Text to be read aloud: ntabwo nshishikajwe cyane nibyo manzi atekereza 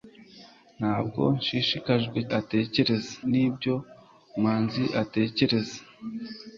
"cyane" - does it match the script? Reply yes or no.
no